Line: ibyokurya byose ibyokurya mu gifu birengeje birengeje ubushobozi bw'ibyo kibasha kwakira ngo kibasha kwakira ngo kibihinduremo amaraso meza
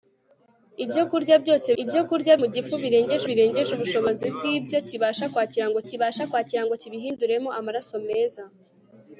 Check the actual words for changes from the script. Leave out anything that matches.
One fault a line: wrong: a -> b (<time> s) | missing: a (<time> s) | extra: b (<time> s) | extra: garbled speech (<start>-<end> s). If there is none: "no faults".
no faults